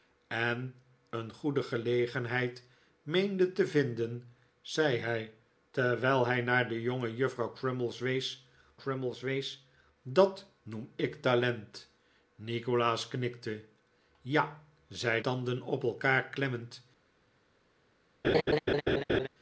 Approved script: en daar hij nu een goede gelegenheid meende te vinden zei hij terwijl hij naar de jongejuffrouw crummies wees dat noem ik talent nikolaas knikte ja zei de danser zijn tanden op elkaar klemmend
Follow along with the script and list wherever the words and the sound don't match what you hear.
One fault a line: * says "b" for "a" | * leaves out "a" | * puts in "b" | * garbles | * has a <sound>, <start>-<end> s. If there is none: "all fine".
* leaves out "daar hij nu"
* puts in "crummies wees"
* leaves out "de danser zijn"
* has a laugh, 18.2-19.3 s